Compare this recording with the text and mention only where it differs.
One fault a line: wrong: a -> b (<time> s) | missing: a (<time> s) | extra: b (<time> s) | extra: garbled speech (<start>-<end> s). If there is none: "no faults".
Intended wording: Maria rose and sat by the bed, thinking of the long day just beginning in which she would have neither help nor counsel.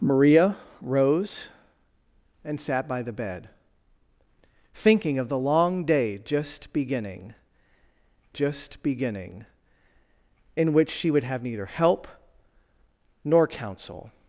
extra: just beginning (8.3 s)